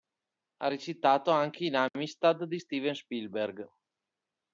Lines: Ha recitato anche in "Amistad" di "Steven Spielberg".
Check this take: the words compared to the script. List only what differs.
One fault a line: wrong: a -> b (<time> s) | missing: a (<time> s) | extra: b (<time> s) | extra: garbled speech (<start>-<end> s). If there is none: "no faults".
no faults